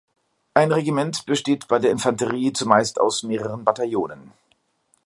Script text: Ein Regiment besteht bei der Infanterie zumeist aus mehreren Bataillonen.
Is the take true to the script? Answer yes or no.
yes